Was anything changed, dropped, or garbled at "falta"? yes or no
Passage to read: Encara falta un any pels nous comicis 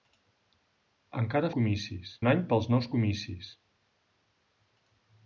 yes